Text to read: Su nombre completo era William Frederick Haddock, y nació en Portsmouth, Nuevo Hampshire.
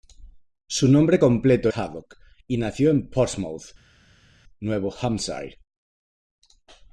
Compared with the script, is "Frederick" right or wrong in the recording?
wrong